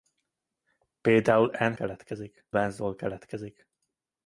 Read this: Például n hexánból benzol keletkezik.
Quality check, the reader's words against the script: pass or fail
fail